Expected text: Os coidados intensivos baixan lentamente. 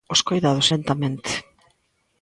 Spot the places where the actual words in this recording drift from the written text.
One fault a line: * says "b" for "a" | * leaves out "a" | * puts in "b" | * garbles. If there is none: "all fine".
* leaves out "intensivos baixan"